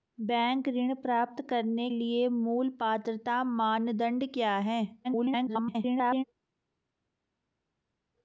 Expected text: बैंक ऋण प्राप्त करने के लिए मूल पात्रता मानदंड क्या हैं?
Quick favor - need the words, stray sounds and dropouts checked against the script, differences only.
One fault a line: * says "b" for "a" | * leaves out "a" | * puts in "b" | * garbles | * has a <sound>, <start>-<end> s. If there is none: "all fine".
* leaves out "के"
* garbles